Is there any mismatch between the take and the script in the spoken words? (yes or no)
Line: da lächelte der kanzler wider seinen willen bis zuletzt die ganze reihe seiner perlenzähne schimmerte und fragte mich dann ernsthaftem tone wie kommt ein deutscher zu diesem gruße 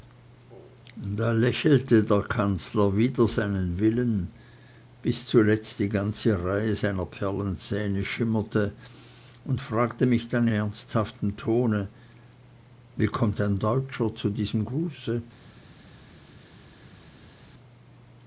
no